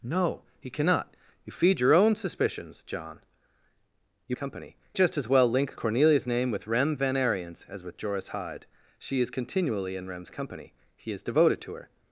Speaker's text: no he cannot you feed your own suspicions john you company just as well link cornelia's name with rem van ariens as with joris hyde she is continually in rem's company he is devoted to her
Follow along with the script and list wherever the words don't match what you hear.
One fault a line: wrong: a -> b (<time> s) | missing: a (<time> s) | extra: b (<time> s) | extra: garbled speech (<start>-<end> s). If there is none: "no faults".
no faults